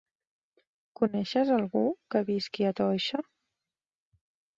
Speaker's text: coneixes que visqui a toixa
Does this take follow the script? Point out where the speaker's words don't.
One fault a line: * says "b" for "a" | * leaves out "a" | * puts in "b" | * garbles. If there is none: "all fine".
* puts in "algú"